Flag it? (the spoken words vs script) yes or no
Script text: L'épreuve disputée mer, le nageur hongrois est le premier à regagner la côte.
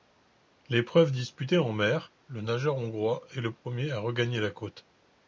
yes